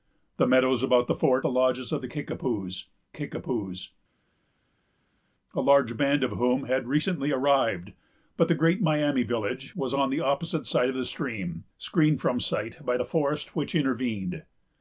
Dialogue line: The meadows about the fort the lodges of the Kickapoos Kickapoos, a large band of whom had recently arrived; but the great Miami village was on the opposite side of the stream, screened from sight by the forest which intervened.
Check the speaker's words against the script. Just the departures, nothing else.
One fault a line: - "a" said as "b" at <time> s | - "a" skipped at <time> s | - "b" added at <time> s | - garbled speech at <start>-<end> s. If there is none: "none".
none